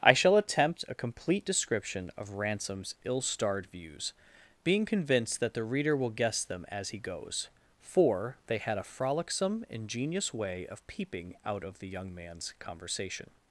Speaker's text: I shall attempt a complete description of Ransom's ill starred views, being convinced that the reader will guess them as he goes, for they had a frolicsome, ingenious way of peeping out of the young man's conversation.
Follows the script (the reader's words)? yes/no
yes